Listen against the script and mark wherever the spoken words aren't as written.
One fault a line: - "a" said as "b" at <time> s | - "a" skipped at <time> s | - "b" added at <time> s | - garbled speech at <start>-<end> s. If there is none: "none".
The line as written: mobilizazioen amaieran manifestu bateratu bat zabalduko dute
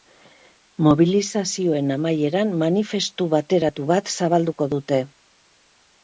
none